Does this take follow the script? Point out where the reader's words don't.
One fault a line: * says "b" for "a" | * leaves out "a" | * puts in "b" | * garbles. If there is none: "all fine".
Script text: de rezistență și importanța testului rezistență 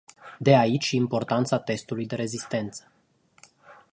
* says "aici" for "rezistență"
* puts in "de"